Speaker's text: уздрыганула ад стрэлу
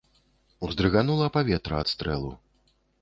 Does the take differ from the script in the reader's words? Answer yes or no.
yes